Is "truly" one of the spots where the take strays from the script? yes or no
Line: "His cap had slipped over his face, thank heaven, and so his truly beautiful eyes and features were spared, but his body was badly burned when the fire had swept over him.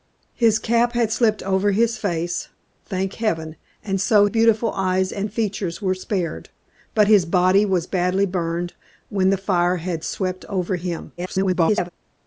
yes